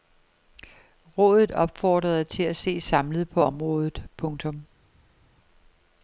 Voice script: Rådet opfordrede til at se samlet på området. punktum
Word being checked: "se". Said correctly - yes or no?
yes